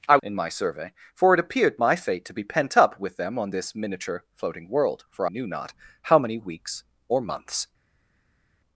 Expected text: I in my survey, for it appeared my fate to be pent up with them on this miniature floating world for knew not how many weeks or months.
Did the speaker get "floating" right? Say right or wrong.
right